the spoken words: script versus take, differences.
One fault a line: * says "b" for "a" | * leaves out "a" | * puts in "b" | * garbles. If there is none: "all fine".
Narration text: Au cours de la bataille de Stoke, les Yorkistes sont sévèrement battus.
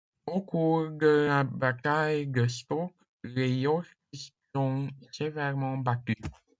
all fine